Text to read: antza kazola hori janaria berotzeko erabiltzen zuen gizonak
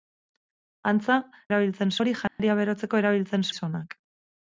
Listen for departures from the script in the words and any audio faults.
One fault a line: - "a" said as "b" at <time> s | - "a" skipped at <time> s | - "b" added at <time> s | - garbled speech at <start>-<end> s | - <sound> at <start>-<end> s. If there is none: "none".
- "kazola" said as "erabiltzen" at 1.5 s
- dropout at 2.3-2.4 s
- "zuen" skipped at 3.5 s